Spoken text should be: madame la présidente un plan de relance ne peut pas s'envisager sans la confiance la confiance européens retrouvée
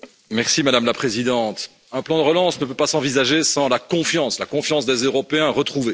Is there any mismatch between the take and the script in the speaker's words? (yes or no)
yes